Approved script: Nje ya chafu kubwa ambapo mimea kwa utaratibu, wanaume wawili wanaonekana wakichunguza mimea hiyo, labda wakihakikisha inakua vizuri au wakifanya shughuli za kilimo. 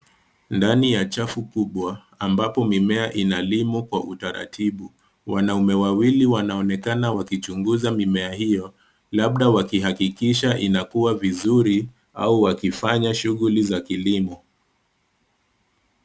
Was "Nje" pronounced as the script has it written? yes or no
no